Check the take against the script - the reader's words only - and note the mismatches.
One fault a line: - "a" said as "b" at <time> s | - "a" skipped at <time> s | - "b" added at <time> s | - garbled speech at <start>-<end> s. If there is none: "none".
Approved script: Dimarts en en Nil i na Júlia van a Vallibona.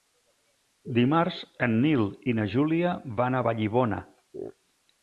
- "en" skipped at 1.8 s